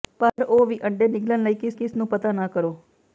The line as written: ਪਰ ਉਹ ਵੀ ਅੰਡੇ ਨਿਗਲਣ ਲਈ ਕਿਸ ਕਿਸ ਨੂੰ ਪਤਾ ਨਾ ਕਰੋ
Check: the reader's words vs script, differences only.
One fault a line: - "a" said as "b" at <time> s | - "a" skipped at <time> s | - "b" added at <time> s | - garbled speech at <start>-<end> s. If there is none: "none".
none